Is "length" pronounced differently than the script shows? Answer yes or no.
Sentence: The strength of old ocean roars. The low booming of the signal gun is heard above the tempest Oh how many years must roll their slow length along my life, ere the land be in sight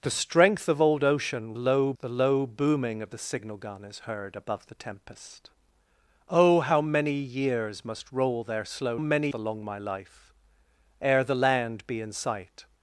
yes